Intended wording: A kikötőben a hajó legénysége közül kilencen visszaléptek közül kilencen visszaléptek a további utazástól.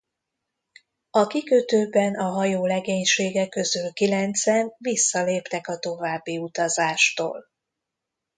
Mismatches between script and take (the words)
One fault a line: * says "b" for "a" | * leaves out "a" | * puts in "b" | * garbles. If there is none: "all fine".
* leaves out "közül kilencen visszaléptek"